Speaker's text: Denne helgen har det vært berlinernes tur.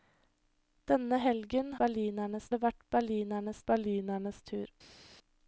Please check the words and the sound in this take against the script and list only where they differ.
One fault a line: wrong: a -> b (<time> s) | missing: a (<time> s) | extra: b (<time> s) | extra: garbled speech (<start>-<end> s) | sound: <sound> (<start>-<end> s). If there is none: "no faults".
wrong: har -> berlinernes (1.8 s)
extra: berlinernes (3.7 s)